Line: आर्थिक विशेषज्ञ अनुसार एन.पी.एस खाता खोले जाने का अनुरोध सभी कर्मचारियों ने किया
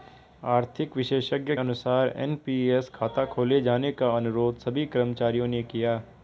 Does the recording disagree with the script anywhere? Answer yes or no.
no